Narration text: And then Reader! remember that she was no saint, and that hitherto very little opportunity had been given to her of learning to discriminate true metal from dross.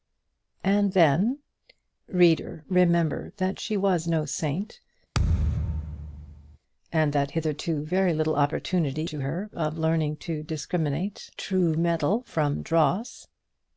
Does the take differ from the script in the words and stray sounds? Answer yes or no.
yes